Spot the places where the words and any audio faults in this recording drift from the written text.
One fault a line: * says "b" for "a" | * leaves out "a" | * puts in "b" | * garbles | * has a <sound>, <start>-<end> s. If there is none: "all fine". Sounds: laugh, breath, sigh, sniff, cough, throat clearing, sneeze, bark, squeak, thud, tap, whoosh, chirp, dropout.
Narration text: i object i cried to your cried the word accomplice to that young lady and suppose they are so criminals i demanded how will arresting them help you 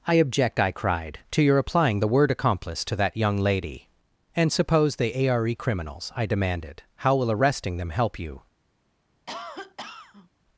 * says "applying" for "cried"
* leaves out "so"
* has a cough, 9.3-10.3 s